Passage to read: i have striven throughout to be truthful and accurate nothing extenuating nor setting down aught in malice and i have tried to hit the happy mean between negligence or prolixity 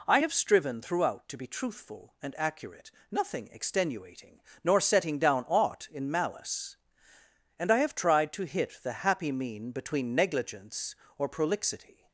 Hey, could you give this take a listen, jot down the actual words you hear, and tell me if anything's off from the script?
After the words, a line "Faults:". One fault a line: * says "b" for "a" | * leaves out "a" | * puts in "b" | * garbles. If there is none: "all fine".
i have striven throughout to be truthful and accurate nothing extenuating nor setting down aught in malice and i have tried to hit the happy mean between negligence or prolixity
Faults:
all fine